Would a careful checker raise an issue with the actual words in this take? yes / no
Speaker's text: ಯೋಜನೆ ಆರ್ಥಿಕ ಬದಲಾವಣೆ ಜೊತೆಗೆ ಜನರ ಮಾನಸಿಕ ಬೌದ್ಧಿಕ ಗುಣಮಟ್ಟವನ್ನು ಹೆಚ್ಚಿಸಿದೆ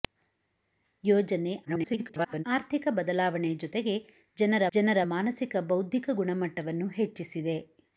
yes